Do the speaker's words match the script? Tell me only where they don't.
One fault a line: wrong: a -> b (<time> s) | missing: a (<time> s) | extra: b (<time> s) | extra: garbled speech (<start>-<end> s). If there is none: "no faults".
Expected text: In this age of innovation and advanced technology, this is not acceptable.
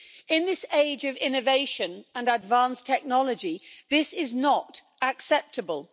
no faults